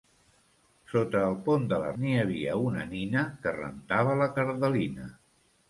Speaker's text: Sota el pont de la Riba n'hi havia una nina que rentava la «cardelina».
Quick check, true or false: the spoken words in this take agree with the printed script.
false